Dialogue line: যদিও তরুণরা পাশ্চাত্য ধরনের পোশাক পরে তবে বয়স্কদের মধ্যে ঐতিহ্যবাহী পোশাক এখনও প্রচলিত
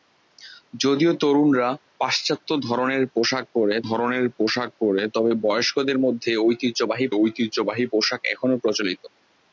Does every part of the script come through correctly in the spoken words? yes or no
no